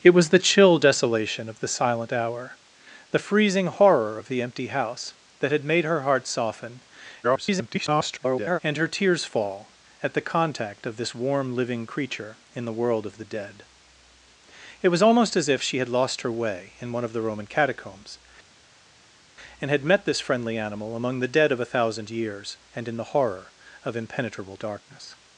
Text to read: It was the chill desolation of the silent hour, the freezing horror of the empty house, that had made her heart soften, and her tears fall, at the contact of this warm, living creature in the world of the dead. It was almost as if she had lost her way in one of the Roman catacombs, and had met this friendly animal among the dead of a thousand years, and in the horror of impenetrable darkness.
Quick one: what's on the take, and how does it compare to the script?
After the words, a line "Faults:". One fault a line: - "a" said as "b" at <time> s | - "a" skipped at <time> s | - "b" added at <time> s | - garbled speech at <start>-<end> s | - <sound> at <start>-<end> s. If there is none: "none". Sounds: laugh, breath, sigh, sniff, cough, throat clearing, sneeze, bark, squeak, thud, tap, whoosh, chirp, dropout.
It was the chill desolation of the silent hour, the freezing horror of the empty house, that had made her heart soften, [garbled] and her tears fall, at the contact of this warm, living creature in the world of the dead. It was almost as if she had lost her way in one of the Roman catacombs, and had met this friendly animal among the dead of a thousand years, and in the horror of impenetrable darkness.
Faults:
- garbled speech at 7.2-8.6 s